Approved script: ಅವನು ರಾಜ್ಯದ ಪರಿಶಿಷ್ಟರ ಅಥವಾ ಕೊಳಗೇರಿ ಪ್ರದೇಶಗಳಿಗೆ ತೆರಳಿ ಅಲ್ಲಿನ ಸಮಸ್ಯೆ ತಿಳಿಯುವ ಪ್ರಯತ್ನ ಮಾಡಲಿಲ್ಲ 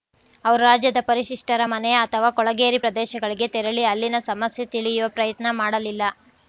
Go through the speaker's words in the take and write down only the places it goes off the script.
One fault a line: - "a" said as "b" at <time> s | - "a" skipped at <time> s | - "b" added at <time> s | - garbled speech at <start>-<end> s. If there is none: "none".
- "ಅವನು" said as "ಅವರು" at 0.5 s
- "ಮನೆ" added at 1.7 s